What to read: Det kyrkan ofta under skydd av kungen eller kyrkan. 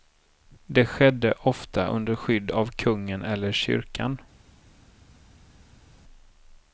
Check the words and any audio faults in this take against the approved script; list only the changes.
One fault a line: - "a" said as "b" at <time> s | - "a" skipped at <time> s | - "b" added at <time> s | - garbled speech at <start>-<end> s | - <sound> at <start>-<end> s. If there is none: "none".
- "kyrkan" said as "skedde" at 0.8 s